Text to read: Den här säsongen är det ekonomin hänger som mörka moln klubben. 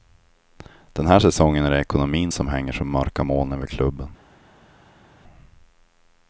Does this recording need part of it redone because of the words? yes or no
yes